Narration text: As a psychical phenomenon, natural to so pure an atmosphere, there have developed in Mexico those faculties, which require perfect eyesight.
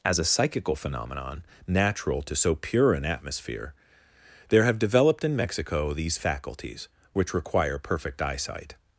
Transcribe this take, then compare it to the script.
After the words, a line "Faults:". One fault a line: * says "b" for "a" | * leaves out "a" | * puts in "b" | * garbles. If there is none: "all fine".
As a psychical phenomenon, natural to so pure an atmosphere, there have developed in Mexico these faculties, which require perfect eyesight.
Faults:
* says "these" for "those"